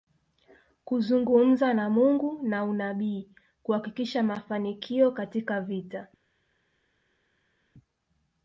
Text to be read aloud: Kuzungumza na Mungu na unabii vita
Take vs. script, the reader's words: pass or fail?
fail